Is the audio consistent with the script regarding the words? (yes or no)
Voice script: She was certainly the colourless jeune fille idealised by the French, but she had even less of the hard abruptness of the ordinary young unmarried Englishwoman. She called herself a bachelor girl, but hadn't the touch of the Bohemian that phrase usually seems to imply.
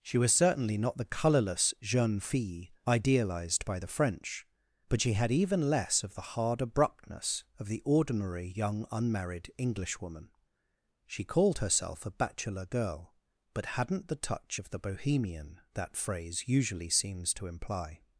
no